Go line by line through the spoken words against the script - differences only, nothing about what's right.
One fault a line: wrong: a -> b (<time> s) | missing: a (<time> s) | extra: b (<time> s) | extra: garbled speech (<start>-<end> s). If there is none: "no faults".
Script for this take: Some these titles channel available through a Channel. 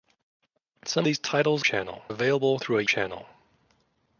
no faults